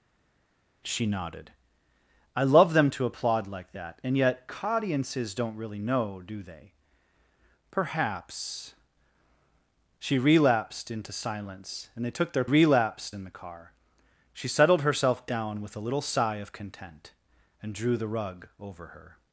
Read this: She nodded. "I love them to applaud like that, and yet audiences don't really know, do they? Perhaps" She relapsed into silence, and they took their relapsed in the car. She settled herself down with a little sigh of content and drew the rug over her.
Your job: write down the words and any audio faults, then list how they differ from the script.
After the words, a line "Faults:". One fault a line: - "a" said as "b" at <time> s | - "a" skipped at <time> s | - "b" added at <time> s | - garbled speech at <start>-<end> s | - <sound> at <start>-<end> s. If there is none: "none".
She nodded. "I love them to applaud like that, and yet audiences don't really know, do they? Perhaps" She relapsed into silence, and they took their relapsed in the car. She settled herself down with a little sigh of content and drew the rug over her.
Faults:
none